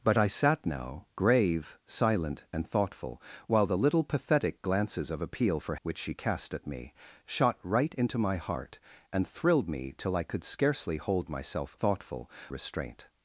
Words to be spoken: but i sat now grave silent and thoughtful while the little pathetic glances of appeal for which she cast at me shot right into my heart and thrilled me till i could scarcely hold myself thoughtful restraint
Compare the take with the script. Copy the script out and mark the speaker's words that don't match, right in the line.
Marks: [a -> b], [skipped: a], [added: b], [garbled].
but i sat now grave silent and thoughtful while the little pathetic glances of appeal for which she cast at me shot right into my heart and thrilled me till i could scarcely hold myself thoughtful restraint